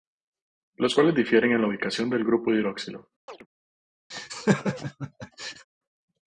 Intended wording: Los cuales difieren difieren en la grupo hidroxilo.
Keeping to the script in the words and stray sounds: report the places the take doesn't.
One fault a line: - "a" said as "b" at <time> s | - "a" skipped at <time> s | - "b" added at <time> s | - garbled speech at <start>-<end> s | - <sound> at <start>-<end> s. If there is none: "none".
- "difieren" skipped at 1.5 s
- "ubicación del" added at 1.6 s
- chirp at 3.3-3.5 s
- laugh at 4.1-5.7 s